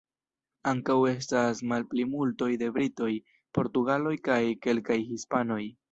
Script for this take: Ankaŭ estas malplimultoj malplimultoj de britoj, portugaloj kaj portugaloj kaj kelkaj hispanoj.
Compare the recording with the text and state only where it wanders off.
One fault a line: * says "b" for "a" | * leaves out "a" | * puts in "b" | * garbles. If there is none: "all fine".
* leaves out "malplimultoj"
* leaves out "portugaloj kaj"